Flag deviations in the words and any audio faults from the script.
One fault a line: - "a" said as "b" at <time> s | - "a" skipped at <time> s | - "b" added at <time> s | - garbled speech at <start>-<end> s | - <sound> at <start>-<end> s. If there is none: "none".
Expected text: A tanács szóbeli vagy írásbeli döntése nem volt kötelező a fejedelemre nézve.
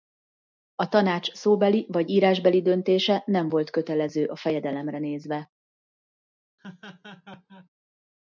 - laugh at 6.6-7.7 s